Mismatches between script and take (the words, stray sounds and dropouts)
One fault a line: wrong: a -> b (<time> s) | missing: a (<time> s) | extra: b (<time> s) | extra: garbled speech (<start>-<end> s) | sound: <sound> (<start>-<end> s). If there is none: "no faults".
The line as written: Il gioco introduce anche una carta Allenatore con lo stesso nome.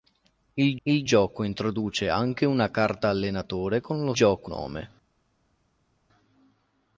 extra: il (0.8 s)
wrong: stesso -> gioco (4.1 s)